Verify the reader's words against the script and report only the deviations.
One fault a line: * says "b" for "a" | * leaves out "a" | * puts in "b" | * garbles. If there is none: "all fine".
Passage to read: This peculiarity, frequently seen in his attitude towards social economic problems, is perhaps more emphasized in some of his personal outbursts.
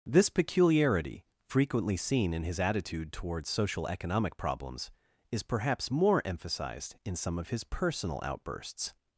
all fine